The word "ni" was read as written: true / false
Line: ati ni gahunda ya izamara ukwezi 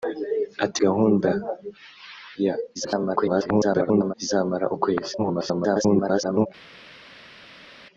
false